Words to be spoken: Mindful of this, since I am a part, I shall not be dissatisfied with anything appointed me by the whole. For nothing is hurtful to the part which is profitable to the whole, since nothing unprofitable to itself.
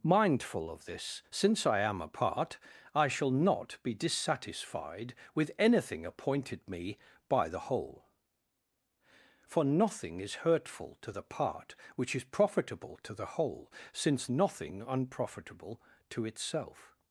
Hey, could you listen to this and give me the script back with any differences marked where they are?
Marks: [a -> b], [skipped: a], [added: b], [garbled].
Mindful of this, since I am a part, I shall not be dissatisfied with anything appointed me by the whole. For nothing is hurtful to the part which is profitable to the whole, since nothing unprofitable to itself.